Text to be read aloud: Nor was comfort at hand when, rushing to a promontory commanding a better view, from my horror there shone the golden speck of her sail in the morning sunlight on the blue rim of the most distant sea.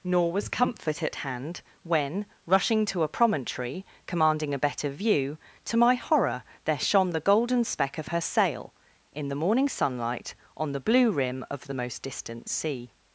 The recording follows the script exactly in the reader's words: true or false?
false